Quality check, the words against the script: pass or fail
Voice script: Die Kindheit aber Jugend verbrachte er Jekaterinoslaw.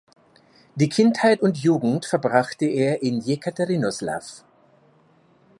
fail